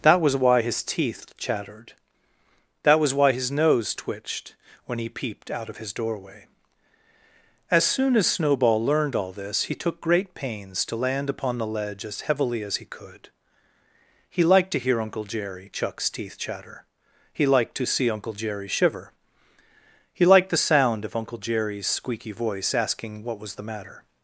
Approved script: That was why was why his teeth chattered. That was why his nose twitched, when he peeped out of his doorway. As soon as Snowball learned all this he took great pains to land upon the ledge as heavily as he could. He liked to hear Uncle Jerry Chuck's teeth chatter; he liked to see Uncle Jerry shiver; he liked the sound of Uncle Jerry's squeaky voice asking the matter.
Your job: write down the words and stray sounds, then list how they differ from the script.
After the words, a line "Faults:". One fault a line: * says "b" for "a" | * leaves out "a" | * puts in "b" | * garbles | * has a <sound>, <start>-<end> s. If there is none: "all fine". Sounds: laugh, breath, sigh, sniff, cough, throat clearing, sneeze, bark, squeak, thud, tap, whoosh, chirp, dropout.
That was why his teeth chattered. That was why his nose twitched, when he peeped out of his doorway. As soon as Snowball learned all this he took great pains to land upon the ledge as heavily as he could. He liked to hear Uncle Jerry Chuck's teeth chatter; he liked to see Uncle Jerry shiver; he liked the sound of Uncle Jerry's squeaky voice asking what was the matter.
Faults:
* leaves out "was why"
* puts in "what was"